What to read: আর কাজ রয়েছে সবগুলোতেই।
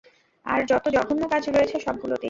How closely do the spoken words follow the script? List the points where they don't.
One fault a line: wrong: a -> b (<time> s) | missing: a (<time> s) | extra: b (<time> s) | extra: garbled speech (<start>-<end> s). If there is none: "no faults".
extra: যত জঘন্য (0.7 s)